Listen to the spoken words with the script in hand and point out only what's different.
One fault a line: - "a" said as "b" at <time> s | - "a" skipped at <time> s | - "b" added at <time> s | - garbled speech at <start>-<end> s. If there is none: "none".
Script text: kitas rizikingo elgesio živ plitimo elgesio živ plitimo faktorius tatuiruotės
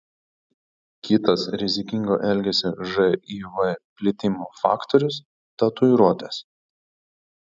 - "elgesio živ plitimo" skipped at 4.5 s